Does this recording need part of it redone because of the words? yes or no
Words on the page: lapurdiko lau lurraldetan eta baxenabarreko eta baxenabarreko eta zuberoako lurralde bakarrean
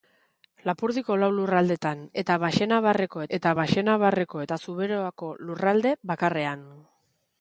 no